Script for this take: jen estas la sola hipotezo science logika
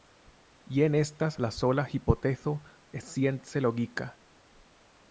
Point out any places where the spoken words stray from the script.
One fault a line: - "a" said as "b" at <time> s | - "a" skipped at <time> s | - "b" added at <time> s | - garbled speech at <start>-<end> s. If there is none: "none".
none